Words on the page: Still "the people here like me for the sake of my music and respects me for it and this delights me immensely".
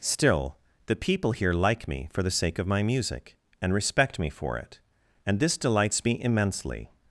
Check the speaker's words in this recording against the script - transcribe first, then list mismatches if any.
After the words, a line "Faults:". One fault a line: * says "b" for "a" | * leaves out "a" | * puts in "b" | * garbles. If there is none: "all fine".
Still "the people here like me for the sake of my music and respect me for it and this delights me immensely".
Faults:
* says "respect" for "respects"